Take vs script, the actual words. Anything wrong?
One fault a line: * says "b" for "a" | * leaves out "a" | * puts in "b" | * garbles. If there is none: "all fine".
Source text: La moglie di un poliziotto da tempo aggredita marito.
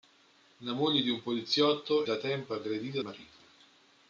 all fine